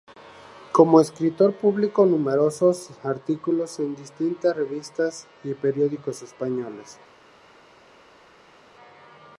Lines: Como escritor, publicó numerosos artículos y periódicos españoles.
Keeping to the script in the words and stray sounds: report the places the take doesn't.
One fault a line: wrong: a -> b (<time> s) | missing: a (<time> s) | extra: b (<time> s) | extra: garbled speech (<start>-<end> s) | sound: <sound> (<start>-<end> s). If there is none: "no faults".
extra: en distintas revistas (3.8 s)